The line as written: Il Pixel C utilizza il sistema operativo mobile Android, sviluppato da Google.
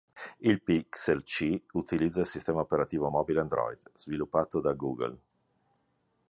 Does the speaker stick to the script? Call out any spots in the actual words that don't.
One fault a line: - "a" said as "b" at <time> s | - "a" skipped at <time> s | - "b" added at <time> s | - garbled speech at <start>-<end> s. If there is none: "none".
none